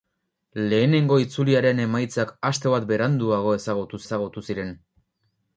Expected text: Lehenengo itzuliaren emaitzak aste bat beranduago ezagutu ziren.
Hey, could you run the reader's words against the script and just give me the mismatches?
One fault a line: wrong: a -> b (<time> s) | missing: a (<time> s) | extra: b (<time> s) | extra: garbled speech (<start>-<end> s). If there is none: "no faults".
extra: ezagutu (4.0 s)